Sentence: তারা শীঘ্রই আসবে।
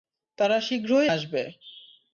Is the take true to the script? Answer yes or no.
yes